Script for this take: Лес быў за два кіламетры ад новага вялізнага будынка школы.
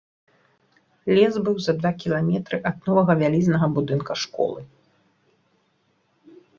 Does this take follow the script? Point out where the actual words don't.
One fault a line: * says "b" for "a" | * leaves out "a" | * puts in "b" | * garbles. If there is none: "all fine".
all fine